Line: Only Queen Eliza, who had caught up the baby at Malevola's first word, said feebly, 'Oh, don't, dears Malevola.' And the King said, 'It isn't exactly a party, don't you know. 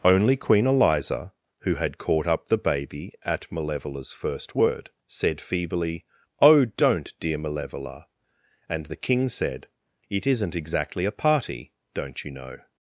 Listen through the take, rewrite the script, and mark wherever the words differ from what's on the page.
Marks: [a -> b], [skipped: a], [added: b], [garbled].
Only Queen Eliza, who had caught up the baby at Malevola's first word, said feebly, 'Oh, don't, [dears -> dear] Malevola.' And the King said, 'It isn't exactly a party, don't you know.